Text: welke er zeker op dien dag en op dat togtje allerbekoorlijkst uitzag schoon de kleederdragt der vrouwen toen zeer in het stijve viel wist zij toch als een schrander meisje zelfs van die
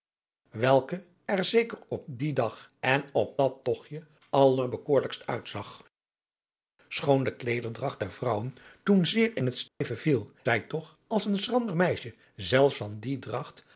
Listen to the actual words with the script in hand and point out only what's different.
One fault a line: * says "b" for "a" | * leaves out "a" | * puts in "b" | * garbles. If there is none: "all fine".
* leaves out "wist"